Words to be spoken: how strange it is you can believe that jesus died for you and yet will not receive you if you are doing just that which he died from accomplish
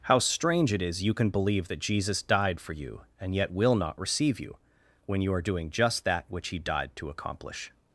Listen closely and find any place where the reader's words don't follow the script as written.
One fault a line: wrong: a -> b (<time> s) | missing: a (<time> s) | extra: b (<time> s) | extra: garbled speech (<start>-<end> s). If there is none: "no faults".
wrong: if -> when (5.1 s)
wrong: from -> to (7.0 s)